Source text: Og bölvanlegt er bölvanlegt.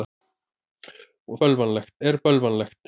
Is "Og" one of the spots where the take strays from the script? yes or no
no